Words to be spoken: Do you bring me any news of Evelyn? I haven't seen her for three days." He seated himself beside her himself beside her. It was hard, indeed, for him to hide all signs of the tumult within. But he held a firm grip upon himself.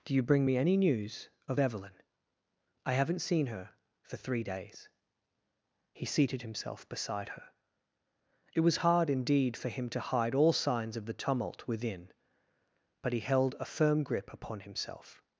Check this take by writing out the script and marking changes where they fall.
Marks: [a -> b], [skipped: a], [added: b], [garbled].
Do you bring me any news of Evelyn? I haven't seen her for three days." He seated himself beside her [skipped: himself beside her.] It was hard, indeed, for him to hide all signs of the tumult within. But he held a firm grip upon himself.